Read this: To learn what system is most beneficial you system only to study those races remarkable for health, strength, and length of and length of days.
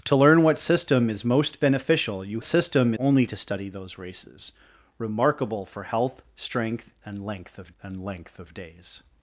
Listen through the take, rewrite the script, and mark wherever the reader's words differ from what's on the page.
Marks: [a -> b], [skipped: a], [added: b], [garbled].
To learn what system is most beneficial you system only to study those races remarkable for health, strength, and length of and length of days.